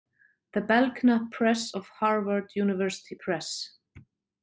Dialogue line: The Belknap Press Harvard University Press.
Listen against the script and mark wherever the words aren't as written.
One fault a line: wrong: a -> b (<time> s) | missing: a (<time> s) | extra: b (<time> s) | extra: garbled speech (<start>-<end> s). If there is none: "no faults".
extra: of (1.7 s)